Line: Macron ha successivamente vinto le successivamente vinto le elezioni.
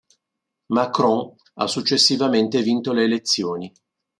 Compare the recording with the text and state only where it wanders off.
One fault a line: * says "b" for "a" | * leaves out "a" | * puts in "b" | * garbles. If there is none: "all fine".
* leaves out "successivamente vinto le"